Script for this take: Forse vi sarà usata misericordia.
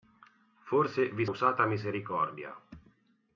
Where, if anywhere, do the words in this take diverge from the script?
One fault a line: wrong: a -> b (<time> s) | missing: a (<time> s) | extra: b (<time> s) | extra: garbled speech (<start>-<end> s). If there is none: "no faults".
missing: sarà (1.3 s)